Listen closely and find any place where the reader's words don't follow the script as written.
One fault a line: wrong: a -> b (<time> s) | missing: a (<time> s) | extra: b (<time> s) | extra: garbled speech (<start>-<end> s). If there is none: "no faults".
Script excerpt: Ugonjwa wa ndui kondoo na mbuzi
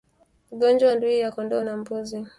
extra: ya (1.2 s)